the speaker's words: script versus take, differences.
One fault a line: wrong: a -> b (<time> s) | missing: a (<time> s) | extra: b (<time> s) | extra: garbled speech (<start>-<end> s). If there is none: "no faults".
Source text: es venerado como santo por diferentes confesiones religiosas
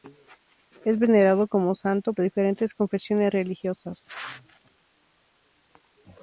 missing: por (2.1 s)